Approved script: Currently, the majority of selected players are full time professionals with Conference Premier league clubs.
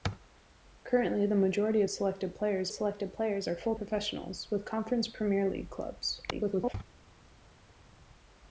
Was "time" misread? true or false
true